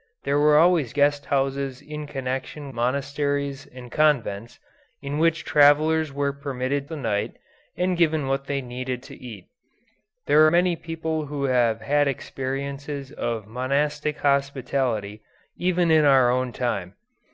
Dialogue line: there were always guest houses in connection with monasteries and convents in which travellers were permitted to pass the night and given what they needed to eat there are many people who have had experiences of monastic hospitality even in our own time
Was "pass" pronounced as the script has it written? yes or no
no